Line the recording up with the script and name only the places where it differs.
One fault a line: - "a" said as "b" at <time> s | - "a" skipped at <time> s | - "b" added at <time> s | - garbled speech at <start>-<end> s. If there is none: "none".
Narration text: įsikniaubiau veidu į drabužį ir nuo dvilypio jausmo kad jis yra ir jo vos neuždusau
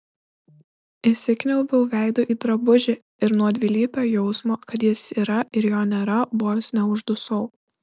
- "nėra" added at 6.0 s